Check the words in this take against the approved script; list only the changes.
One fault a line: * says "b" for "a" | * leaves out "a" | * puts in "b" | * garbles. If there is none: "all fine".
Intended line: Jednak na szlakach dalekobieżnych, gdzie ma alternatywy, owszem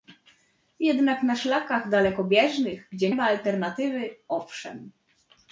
all fine